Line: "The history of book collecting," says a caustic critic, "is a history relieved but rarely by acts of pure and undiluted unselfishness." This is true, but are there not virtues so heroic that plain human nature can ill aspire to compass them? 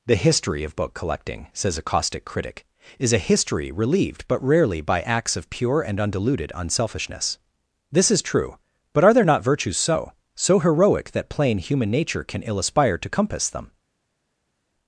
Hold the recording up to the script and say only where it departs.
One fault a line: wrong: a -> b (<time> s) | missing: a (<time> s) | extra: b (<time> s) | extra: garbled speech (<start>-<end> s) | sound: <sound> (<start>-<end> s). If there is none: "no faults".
extra: so (10.4 s)